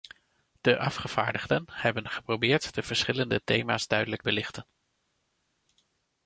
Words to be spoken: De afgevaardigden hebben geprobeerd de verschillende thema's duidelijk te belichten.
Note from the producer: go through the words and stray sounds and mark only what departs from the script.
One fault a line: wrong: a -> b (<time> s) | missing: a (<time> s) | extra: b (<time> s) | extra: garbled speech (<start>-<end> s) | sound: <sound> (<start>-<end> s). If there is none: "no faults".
missing: te (4.2 s)